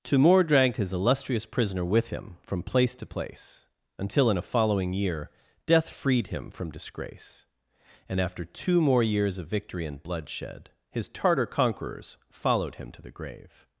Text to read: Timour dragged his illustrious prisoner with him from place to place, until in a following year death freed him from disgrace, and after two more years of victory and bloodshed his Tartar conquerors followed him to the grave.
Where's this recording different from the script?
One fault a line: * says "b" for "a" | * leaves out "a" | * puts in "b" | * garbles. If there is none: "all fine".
all fine